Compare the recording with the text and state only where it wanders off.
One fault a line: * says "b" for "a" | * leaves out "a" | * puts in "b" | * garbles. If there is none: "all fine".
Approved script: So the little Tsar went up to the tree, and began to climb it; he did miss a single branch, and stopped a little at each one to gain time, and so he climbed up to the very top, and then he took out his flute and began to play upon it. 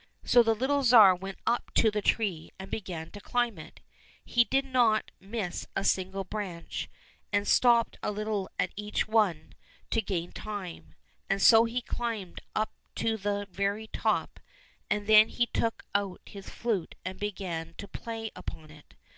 * puts in "not"